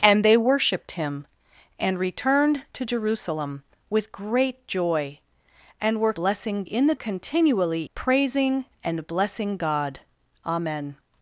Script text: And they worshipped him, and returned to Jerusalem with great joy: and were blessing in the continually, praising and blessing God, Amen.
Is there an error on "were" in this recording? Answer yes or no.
no